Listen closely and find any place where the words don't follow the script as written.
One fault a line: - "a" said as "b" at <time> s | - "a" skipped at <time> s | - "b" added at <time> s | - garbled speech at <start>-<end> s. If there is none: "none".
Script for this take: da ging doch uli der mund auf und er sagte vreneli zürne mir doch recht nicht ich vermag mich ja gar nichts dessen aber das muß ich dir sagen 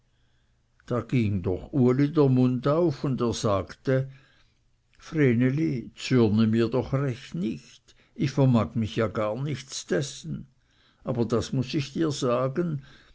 none